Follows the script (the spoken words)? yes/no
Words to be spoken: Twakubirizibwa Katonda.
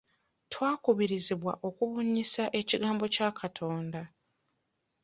no